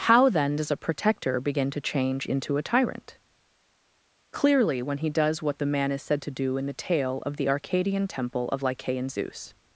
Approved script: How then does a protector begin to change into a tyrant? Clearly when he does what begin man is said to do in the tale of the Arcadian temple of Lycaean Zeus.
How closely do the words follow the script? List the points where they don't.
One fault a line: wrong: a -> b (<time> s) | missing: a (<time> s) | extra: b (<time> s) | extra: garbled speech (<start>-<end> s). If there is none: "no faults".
wrong: begin -> the (5.6 s)